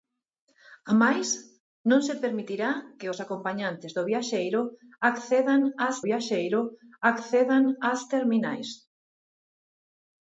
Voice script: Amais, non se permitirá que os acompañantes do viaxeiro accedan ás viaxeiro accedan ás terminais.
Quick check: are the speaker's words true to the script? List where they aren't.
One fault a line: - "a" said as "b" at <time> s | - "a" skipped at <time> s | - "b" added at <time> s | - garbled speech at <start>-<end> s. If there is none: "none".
none